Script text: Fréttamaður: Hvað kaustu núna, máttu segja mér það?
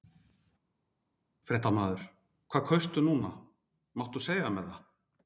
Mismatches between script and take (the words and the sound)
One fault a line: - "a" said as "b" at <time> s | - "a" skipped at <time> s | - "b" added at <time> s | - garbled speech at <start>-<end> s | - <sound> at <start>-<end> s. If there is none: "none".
none